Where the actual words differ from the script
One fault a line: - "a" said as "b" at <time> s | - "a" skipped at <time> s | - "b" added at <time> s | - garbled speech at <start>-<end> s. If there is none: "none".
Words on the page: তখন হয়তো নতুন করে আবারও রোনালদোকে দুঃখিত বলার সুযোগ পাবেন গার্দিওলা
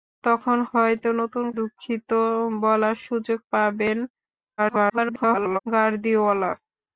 - "করে আবারও রোনালদোকে" skipped at 1.4 s
- garbled speech at 4.6-5.6 s